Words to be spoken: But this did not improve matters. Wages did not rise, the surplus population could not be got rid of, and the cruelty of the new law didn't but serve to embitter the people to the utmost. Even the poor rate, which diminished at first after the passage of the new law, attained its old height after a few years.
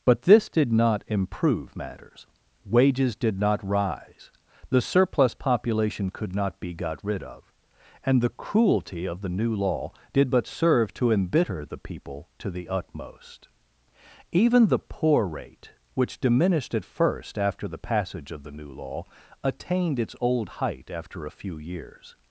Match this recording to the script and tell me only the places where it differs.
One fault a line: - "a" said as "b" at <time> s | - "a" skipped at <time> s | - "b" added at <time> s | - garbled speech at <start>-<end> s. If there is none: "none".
- "didn't" said as "did" at 10.1 s